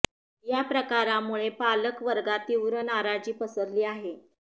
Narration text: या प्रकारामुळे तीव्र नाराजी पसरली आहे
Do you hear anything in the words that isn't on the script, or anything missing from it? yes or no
yes